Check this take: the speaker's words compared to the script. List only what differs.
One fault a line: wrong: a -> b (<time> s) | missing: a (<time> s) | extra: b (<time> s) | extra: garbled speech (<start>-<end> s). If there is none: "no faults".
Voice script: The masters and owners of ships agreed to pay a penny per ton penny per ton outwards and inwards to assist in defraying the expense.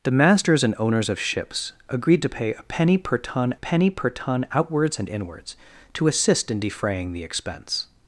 no faults